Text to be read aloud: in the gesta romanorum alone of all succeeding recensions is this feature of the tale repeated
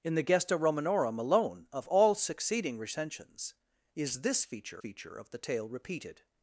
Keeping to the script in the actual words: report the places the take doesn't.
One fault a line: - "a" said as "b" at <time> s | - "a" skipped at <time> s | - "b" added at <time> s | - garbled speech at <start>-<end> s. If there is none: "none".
- "feature" added at 4.8 s